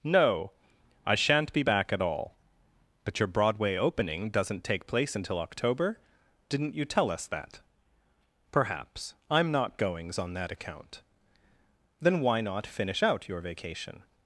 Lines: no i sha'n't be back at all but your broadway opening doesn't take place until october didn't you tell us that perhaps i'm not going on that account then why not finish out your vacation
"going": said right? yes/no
no